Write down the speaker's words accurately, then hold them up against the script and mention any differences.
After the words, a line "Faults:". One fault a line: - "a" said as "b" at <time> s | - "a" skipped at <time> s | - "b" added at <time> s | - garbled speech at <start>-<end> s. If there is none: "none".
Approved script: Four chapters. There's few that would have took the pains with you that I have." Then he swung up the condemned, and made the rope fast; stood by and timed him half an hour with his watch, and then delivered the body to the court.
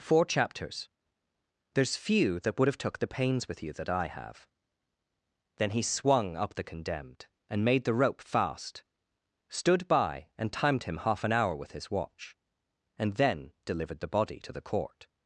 Four chapters. There's few that would have took the pains with you that I have." Then he swung up the condemned, and made the rope fast; stood by and timed him half an hour with his watch, and then delivered the body to the court.
Faults:
none